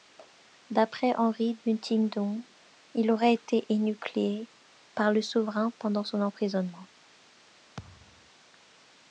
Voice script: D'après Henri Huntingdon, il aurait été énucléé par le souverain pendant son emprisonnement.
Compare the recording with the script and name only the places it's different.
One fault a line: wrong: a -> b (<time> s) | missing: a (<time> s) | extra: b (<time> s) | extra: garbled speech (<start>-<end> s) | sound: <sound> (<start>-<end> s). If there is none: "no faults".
sound: thud (7.8-8.3 s)